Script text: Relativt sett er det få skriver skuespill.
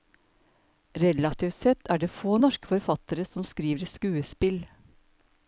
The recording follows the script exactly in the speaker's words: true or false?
false